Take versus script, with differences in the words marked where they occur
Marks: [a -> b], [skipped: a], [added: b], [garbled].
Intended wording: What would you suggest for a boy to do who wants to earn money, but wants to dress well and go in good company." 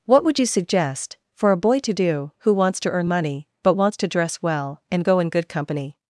What would you suggest for a boy to do who wants to earn money, but wants to dress well and go in good company."